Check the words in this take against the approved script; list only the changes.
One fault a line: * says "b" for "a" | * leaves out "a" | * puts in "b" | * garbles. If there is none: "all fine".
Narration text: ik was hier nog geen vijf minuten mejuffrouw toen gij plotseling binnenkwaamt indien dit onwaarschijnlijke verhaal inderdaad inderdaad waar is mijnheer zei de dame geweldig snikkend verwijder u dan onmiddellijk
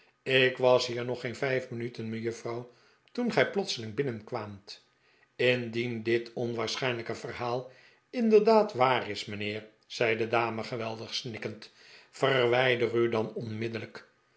* leaves out "inderdaad"